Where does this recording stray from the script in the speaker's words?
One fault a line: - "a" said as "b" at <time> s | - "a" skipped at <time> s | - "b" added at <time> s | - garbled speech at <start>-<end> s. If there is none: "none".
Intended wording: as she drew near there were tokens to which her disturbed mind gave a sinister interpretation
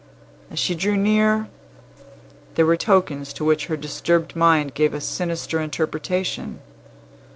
none